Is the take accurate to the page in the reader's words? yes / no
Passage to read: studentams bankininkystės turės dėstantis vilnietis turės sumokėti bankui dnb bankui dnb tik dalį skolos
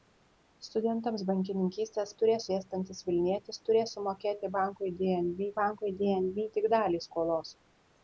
yes